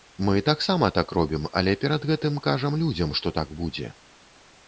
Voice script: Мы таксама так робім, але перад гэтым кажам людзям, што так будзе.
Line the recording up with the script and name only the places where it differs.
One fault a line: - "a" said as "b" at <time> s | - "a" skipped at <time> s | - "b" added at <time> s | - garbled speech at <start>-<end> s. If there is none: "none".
none